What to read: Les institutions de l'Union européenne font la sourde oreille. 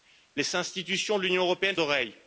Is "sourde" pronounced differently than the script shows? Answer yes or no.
yes